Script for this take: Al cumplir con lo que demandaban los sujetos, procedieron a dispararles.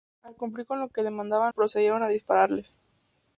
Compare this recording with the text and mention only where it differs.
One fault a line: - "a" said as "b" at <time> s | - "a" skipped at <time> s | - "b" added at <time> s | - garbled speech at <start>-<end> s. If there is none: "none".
- "los sujetos" skipped at 1.5 s